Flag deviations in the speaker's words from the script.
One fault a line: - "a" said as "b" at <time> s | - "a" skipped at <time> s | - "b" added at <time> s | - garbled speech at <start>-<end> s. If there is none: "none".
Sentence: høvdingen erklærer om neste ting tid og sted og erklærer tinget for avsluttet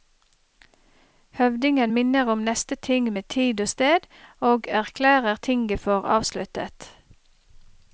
- "erklærer" said as "minner" at 1.9 s
- "med" added at 3.1 s